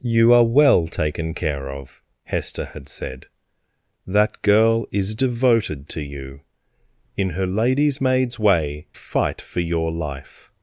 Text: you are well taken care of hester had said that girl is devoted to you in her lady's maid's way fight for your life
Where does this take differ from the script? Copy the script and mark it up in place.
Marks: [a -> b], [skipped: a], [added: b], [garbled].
you are well taken care of hester had said that girl is devoted to you in her lady's maid's way fight for your life